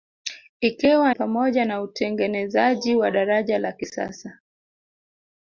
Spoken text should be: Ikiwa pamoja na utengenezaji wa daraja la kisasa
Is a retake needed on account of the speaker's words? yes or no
no